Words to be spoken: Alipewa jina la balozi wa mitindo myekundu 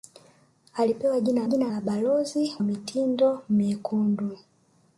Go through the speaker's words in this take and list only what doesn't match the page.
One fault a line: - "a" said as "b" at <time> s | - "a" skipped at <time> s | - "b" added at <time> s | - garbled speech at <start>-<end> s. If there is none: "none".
- "jina" added at 1.5 s
- "wa" skipped at 2.6 s